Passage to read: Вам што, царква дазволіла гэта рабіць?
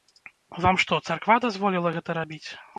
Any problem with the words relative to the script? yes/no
no